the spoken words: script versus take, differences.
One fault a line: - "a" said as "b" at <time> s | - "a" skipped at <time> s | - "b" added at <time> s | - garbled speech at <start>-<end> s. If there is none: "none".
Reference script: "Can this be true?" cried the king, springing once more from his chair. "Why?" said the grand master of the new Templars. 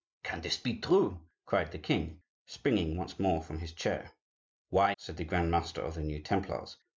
none